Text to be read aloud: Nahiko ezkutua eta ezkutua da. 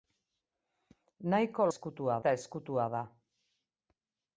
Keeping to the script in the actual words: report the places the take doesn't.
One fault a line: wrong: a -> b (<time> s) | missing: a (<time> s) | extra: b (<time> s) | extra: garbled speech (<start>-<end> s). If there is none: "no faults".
no faults